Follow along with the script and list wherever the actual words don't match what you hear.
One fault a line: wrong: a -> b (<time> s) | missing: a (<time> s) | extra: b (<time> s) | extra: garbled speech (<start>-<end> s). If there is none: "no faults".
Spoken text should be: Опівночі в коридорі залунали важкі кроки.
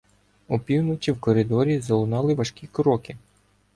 no faults